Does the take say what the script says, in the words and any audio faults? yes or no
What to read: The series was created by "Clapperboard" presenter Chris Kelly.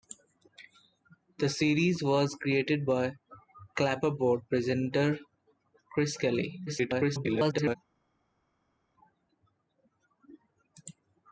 no